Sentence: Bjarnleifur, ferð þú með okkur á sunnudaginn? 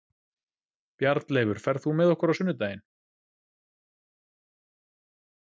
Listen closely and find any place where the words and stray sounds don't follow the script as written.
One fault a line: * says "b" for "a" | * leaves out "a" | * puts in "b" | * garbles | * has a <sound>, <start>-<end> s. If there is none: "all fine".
all fine